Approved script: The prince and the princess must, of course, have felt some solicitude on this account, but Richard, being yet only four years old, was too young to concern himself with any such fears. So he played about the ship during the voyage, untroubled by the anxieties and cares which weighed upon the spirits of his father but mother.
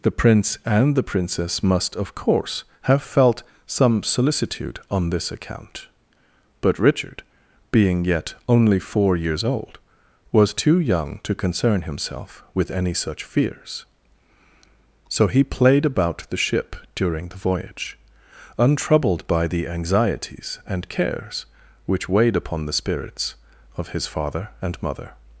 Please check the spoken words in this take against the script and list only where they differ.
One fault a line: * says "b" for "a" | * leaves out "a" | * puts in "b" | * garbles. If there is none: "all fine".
* says "and" for "but"